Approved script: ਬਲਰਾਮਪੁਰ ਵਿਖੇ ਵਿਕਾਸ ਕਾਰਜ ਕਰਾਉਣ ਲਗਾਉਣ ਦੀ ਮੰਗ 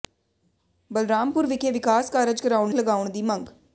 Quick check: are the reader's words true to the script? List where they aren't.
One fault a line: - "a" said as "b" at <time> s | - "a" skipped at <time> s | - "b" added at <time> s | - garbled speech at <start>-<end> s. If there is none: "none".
none